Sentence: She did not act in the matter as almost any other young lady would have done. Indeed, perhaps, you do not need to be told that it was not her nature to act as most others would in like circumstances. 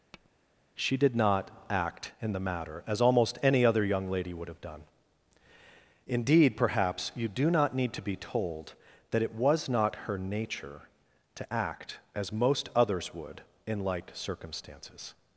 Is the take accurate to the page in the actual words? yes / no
yes